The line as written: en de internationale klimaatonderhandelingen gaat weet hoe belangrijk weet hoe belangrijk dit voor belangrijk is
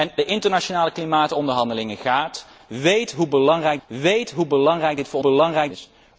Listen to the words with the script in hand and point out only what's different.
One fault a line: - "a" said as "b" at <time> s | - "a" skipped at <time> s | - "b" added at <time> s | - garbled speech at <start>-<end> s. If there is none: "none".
none